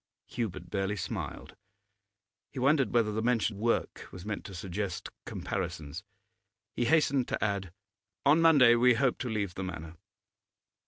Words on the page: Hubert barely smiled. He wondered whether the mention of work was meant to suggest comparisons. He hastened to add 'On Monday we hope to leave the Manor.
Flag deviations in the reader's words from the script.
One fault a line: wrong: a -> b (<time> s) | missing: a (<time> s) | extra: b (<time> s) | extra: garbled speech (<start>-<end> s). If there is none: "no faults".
missing: of (3.5 s)